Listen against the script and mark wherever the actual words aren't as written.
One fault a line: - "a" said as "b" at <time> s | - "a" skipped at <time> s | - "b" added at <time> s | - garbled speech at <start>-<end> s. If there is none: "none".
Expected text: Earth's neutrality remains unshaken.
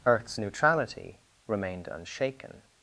- "remains" said as "remained" at 1.4 s